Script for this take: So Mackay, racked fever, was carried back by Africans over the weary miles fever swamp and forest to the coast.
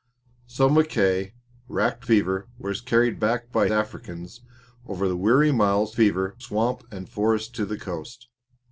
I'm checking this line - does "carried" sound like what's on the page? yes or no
yes